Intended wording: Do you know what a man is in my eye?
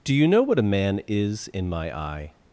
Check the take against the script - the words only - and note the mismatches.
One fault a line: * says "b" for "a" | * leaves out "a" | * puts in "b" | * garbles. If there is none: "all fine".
all fine